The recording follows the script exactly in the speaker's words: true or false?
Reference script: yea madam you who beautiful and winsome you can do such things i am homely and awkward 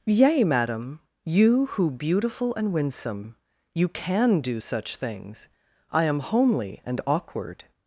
true